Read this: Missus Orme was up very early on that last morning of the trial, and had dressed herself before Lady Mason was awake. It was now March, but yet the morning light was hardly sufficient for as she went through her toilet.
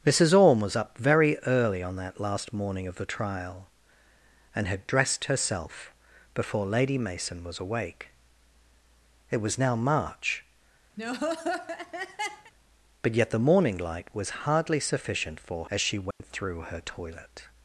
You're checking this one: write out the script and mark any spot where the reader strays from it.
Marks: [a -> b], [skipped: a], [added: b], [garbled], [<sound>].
Missus Orme was up very early on that last morning of the trial, and had dressed herself before Lady Mason was awake. It was now March, [laugh] but yet the morning light was hardly sufficient for as she went [dropout] through her toilet.